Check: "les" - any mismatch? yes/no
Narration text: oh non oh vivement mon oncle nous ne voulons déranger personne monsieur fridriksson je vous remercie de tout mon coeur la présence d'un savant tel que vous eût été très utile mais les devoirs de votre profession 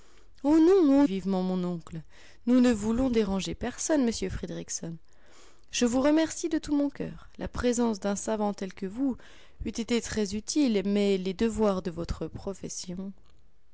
no